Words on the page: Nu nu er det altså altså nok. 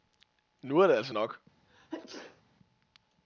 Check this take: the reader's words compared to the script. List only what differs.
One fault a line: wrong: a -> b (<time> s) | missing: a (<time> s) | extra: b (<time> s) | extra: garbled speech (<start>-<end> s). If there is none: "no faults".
missing: nu (0.8 s)
missing: altså (1.1 s)